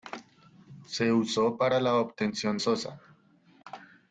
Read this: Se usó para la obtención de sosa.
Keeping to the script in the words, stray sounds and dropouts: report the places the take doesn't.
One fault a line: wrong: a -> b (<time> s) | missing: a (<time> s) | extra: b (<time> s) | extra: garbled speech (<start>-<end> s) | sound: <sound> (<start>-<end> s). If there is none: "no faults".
missing: de (2.6 s)